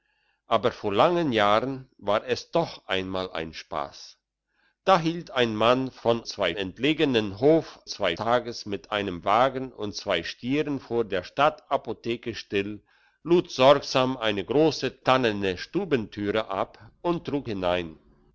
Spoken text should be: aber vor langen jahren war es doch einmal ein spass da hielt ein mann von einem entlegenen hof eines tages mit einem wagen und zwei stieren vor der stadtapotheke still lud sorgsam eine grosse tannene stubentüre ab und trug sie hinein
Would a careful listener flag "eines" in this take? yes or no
yes